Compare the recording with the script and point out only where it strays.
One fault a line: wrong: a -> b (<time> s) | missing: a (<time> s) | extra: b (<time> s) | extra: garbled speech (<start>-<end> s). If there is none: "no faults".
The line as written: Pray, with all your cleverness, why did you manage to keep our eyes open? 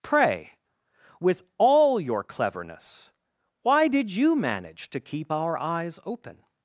no faults